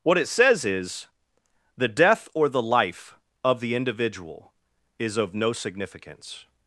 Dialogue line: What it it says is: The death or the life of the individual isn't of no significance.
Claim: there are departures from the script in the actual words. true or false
true